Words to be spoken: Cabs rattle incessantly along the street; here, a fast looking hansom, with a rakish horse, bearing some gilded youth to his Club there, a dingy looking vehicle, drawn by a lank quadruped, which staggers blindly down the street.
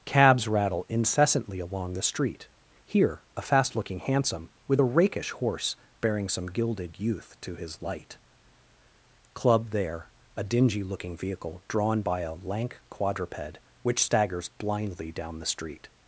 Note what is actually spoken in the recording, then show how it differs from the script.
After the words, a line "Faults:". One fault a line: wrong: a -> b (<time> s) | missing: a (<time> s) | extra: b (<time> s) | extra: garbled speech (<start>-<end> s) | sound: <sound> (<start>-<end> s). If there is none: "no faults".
Cabs rattle incessantly along the street; here, a fast looking hansom, with a rakish horse, bearing some gilded youth to his light Club there, a dingy looking vehicle, drawn by a lank quadruped, which staggers blindly down the street.
Faults:
extra: light (7.8 s)